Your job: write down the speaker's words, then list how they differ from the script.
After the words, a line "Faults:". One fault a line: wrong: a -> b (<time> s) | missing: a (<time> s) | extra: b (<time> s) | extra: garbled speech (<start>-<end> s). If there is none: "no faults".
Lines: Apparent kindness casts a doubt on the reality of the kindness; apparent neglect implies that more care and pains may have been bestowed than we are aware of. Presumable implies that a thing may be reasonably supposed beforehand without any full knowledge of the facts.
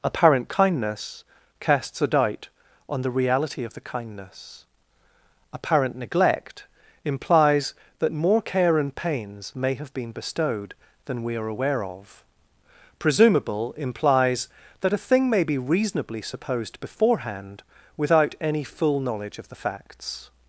Apparent kindness casts a doubt on the reality of the kindness; apparent neglect implies that more care and pains may have been bestowed than we are aware of. Presumable implies that a thing may be reasonably supposed beforehand without any full knowledge of the facts.
Faults:
no faults